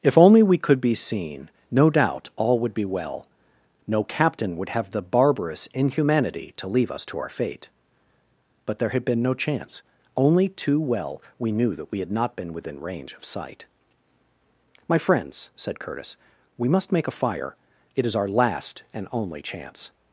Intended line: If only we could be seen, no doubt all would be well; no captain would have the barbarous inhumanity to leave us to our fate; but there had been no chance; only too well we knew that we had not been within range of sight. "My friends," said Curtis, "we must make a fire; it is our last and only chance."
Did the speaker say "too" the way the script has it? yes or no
yes